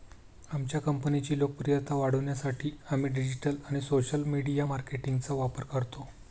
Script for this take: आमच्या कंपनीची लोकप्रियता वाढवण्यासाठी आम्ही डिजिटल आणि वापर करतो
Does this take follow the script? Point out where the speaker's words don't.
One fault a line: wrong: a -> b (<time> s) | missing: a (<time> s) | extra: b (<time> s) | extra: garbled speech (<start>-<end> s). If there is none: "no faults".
extra: सोशल मीडिया मार्केटिंगचा (3.8 s)